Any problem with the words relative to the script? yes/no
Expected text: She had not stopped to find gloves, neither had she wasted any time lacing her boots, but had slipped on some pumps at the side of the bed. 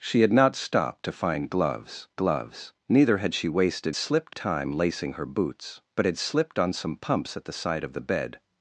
yes